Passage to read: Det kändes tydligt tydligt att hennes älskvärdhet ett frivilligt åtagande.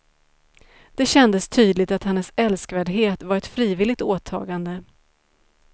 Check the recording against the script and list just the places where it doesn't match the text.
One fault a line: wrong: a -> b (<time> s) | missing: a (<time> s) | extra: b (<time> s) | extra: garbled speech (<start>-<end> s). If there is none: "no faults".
missing: tydligt (1.9 s)
extra: var (3.2 s)